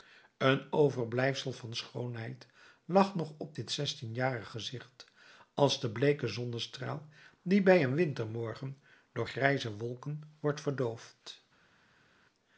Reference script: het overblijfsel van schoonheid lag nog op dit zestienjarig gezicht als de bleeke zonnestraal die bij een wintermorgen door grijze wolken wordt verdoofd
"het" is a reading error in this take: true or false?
true